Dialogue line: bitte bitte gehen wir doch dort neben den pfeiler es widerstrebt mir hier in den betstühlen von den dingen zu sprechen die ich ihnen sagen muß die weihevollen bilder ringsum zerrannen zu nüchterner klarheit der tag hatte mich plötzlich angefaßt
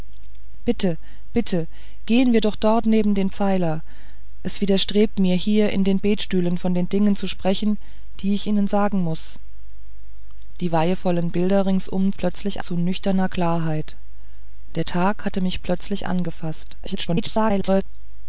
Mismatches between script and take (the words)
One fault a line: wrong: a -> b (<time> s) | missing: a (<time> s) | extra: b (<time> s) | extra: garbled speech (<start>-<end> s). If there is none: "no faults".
wrong: zerrannen -> plötzlich (12.2 s)
extra: garbled speech (16.8-17.8 s)